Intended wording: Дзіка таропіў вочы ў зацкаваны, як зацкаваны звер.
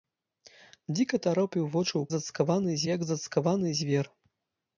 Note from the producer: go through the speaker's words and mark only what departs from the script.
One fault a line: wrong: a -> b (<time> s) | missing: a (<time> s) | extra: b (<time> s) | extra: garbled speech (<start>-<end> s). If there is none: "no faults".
no faults